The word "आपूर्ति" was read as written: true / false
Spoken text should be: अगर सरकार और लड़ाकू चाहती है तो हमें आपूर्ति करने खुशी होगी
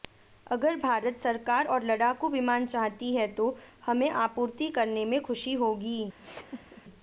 true